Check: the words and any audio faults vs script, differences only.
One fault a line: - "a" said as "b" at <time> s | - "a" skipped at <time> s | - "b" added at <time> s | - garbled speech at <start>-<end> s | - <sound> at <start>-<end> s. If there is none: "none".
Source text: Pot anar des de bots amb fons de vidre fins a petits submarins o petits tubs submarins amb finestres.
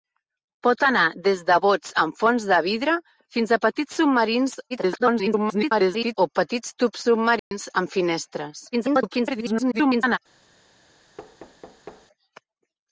- garbled speech at 4.7-6.2 s
- dropout at 7.4-7.5 s
- garbled speech at 8.7-10.2 s
- thud at 11.2-12.1 s